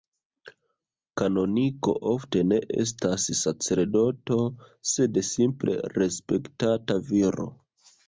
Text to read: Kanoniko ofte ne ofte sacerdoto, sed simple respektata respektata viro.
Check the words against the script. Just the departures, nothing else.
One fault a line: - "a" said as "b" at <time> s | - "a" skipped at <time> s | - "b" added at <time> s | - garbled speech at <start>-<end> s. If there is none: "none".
- "ofte" said as "estas" at 2.9 s
- "respektata" skipped at 7.0 s